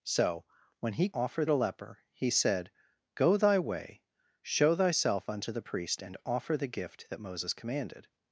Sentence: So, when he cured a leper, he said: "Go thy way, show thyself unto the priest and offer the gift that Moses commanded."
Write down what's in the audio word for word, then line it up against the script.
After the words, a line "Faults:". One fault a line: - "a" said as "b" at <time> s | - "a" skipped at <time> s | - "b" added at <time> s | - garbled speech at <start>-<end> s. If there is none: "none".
So, when he offer a leper, he said: "Go thy way, show thyself unto the priest and offer the gift that Moses commanded."
Faults:
- "cured" said as "offer" at 1.1 s